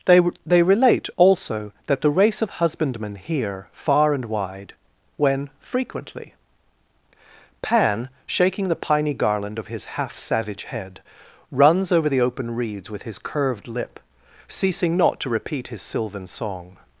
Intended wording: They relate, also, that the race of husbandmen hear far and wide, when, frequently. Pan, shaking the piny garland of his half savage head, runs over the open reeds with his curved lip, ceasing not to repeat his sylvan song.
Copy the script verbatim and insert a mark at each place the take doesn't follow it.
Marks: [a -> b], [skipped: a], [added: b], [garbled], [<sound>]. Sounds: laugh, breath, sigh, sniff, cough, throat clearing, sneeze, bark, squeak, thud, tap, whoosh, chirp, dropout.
They [added: they] relate, also, that the race of husbandmen hear far and wide, when, frequently. Pan, shaking the piny garland of his half savage head, runs over the open reeds with his curved lip, ceasing not to repeat his sylvan song.